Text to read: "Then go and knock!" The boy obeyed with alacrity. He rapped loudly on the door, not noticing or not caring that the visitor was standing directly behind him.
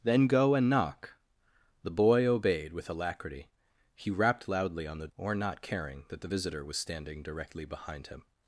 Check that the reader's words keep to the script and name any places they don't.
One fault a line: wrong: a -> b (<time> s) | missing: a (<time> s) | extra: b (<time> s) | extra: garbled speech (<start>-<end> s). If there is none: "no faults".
missing: door not noticing (5.1 s)